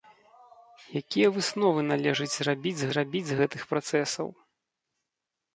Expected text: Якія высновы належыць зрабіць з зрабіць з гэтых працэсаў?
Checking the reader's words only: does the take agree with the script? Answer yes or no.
yes